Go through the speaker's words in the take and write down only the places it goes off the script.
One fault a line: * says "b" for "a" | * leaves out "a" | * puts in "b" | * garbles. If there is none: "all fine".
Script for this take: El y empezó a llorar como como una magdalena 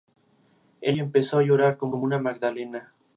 all fine